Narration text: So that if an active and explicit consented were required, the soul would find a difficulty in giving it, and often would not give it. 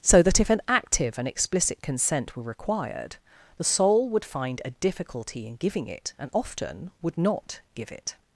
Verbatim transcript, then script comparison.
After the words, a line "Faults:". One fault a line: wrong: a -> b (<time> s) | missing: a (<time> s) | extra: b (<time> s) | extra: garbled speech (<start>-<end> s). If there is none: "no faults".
So that if an active and explicit consent were required, the soul would find a difficulty in giving it, and often would not give it.
Faults:
wrong: consented -> consent (1.8 s)